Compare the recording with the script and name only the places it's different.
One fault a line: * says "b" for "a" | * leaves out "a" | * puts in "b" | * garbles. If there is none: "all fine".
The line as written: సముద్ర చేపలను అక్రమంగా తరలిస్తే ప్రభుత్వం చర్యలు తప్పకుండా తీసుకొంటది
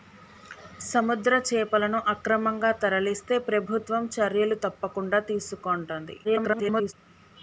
* garbles